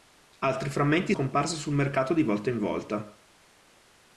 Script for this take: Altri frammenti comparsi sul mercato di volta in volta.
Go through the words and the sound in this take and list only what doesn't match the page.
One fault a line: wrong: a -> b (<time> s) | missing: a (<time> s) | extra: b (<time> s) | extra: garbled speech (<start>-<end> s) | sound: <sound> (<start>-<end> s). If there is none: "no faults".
no faults